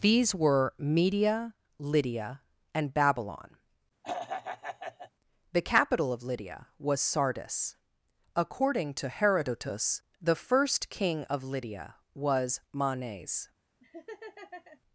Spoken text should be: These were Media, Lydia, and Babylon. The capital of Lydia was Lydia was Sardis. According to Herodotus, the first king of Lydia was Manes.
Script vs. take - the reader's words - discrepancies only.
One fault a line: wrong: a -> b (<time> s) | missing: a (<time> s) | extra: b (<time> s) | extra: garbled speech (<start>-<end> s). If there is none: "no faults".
missing: Lydia was (7.0 s)